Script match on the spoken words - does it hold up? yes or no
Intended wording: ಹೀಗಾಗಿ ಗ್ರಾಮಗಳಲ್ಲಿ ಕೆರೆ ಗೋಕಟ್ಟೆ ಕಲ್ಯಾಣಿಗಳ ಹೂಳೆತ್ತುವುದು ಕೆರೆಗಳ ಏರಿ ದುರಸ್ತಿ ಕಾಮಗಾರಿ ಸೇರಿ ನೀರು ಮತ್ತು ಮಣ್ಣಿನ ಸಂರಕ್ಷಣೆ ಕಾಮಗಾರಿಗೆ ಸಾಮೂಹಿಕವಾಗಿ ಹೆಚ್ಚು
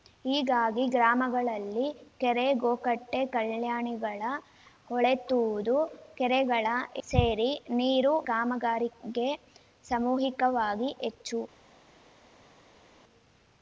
no